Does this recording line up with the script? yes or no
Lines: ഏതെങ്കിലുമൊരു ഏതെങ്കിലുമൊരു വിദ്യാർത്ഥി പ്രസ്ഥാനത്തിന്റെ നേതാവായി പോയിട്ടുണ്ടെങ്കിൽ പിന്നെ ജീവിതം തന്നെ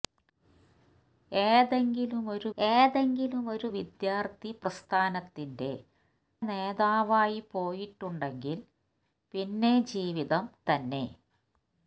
yes